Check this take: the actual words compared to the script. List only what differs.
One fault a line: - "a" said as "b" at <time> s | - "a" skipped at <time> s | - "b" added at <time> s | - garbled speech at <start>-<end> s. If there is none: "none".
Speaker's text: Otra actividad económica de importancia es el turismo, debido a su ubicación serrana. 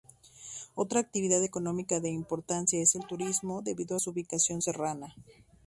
none